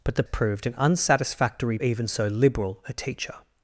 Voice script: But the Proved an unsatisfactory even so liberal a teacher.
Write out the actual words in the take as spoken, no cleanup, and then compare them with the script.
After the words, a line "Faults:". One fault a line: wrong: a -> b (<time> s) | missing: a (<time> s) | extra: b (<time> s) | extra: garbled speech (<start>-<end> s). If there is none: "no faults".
But the Proved an unsatisfactory even so liberal a teacher.
Faults:
no faults